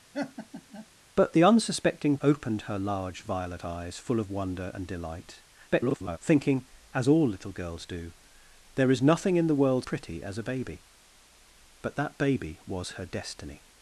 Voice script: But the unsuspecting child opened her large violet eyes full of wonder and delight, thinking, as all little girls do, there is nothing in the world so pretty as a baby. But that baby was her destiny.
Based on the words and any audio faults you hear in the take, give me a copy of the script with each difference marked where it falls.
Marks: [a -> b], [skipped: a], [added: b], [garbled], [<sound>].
[laugh] But the unsuspecting [skipped: child] opened her large violet eyes full of wonder and delight, [garbled] thinking, as all little girls do, there is nothing in the world [skipped: so] pretty as a baby. But that baby was her destiny.